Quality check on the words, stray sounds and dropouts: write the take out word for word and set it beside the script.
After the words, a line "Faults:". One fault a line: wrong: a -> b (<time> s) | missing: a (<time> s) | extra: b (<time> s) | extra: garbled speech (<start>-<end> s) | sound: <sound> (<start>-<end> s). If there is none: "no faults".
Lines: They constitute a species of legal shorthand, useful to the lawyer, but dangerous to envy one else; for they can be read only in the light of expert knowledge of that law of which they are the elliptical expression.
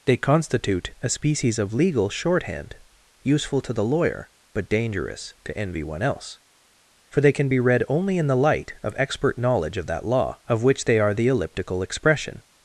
They constitute a species of legal shorthand, useful to the lawyer, but dangerous to envy one else; for they can be read only in the light of expert knowledge of that law of which they are the elliptical expression.
Faults:
no faults